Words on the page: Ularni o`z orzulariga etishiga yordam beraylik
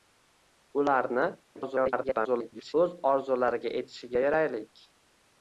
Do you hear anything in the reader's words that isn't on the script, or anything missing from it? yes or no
yes